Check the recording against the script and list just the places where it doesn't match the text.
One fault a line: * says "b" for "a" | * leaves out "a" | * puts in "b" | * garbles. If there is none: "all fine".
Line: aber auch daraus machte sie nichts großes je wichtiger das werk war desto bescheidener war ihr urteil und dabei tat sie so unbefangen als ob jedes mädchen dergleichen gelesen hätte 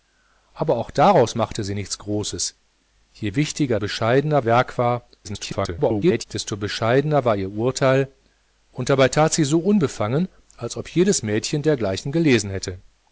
* says "bescheidener" for "das"
* garbles